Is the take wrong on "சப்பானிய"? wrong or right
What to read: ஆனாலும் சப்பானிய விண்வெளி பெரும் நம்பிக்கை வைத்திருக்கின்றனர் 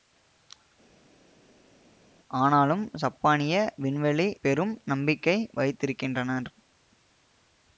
right